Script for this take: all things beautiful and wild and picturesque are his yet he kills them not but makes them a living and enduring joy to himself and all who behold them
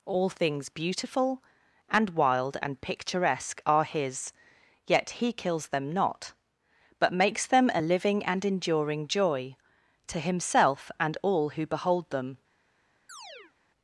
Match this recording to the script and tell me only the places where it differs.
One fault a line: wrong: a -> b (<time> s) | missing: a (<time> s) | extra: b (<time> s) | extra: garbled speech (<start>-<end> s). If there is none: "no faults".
no faults